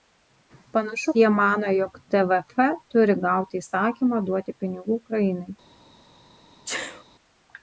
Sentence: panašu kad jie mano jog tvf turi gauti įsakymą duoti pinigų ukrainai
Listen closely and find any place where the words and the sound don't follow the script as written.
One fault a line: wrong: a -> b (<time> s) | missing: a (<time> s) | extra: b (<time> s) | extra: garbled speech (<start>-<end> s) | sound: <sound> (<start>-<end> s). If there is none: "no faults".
missing: kad (1.1 s)
sound: sneeze (6.7-7.0 s)